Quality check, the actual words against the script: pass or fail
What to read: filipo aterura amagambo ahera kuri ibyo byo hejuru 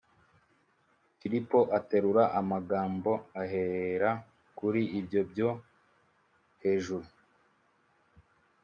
pass